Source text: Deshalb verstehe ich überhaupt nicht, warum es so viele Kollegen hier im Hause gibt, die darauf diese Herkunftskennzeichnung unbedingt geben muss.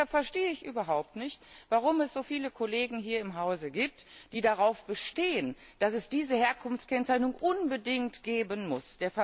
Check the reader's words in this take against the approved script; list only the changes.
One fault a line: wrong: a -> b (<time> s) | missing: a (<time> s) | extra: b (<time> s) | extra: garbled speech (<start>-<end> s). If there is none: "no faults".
extra: bestehen dass es (4.8 s)